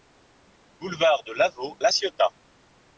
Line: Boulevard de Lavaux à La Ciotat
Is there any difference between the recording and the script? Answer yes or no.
yes